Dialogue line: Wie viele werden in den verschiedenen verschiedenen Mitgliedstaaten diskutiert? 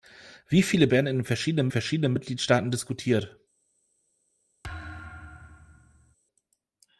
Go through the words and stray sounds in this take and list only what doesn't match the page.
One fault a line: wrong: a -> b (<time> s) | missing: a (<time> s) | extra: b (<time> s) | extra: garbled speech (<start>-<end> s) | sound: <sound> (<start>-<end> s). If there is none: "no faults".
sound: thud (4.6-6.2 s)